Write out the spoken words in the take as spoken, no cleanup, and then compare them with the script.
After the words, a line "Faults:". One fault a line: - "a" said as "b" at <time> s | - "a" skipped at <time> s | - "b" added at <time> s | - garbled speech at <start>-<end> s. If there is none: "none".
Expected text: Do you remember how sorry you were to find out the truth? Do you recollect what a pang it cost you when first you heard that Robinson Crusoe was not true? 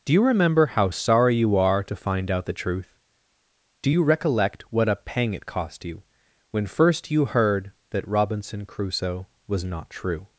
Do you remember how sorry you are to find out the truth? Do you recollect what a pang it cost you when first you heard that Robinson Crusoe was not true?
Faults:
- "were" said as "are" at 1.6 s